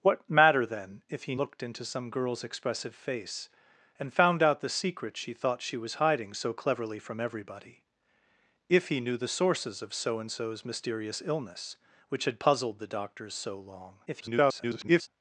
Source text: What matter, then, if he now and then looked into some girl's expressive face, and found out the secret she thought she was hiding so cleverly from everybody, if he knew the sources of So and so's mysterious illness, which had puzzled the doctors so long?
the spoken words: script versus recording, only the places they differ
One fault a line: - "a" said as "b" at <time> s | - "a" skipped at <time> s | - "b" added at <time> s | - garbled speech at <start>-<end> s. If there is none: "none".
- "now and then" skipped at 1.3 s
- garbled speech at 14.1-15.1 s